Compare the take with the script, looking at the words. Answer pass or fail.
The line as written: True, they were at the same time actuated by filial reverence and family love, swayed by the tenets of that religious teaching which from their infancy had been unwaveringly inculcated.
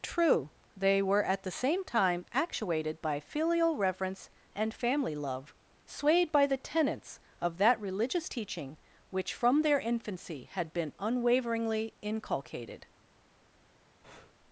pass